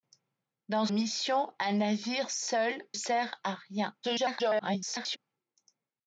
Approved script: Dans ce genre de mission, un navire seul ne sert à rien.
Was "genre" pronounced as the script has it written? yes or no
no